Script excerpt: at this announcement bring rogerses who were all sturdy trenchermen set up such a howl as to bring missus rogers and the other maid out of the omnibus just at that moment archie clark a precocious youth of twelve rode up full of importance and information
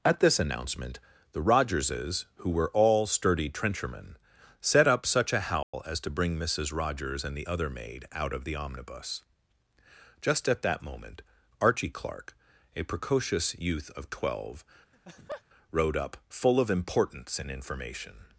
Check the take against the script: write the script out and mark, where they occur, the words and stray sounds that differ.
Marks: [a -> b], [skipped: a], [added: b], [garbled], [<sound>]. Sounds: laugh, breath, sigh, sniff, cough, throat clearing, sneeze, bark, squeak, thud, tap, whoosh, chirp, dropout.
at this announcement [bring -> the] rogerses who were all sturdy trenchermen set up such a howl [dropout] as to bring missus rogers and the other maid out of the omnibus just at that moment archie clark a precocious youth of twelve [laugh] rode up full of importance and information